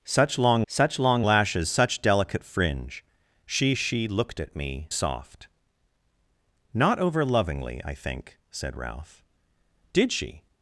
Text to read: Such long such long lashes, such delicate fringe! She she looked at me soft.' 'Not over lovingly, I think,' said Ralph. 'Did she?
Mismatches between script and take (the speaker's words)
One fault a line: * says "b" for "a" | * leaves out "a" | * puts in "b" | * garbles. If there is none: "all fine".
all fine